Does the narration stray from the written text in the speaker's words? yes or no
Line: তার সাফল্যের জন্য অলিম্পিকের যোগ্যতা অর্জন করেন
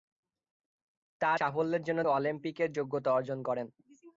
no